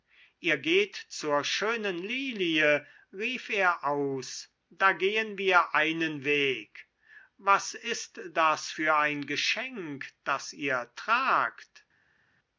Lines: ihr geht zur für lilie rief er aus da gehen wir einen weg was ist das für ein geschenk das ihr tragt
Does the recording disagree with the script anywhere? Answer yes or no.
yes